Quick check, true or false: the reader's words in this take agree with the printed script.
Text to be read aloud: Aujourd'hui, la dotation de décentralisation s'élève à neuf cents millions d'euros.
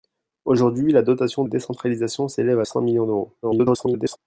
false